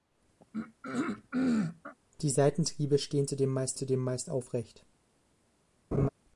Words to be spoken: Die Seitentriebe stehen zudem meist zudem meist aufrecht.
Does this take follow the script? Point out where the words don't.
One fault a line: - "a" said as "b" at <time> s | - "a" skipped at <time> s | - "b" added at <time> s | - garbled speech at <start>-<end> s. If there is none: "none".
none